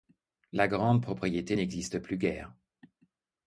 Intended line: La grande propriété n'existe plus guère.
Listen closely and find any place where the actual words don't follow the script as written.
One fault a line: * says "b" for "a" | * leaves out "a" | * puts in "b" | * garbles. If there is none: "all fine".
all fine